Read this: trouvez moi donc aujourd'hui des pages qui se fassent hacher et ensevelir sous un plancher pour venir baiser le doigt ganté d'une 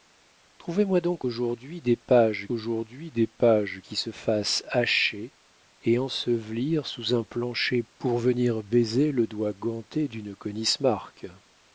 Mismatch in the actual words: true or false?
true